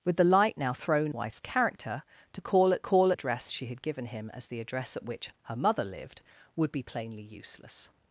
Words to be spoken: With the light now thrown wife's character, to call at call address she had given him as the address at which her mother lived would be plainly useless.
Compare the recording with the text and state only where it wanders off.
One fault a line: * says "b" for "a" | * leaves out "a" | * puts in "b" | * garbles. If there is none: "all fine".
all fine